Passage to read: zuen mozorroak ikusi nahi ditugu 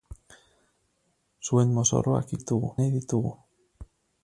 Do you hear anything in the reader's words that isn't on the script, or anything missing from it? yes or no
yes